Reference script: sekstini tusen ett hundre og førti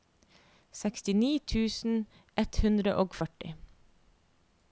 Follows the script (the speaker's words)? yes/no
yes